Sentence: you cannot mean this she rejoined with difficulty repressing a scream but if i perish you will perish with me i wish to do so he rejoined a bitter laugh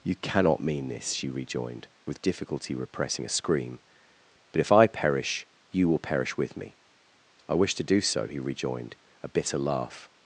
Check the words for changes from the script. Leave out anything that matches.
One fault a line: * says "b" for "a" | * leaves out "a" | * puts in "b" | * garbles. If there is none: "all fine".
all fine